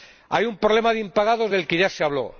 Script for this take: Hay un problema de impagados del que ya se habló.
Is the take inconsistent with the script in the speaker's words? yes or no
no